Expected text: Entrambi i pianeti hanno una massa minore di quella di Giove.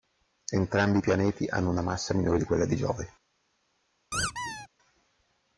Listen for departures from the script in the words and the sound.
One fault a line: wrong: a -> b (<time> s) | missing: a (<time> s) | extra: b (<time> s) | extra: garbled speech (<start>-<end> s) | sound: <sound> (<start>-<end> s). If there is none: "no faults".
sound: squeak (4.1-4.7 s)